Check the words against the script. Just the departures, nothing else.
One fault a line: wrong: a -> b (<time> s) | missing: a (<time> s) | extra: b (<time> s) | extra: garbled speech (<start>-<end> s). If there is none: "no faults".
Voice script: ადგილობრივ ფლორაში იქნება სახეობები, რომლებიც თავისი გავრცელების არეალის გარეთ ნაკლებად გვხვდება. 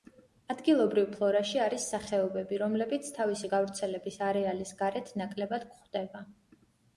wrong: იქნება -> არის (1.6 s)